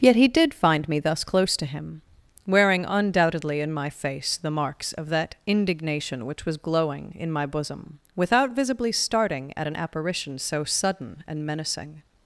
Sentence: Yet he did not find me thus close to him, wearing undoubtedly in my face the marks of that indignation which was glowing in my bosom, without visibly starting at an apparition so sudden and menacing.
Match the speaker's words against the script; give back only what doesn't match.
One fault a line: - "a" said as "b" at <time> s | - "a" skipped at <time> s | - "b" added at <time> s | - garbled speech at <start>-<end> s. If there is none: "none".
- "not" skipped at 0.5 s